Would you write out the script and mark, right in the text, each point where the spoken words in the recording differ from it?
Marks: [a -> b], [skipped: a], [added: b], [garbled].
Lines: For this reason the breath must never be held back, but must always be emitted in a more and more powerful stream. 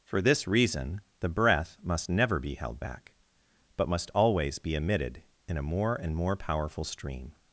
For this reason the breath must never be held back, but must always be emitted in a more and more powerful stream.